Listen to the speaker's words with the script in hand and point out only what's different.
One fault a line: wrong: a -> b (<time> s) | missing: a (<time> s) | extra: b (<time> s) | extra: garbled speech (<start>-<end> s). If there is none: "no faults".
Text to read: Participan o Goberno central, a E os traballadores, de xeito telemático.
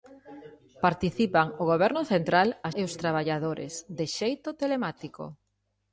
no faults